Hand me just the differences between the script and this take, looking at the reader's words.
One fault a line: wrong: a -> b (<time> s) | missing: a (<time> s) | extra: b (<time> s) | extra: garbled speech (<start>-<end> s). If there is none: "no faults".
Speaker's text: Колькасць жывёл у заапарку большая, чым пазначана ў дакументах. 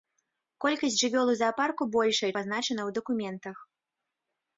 missing: чым (2.3 s)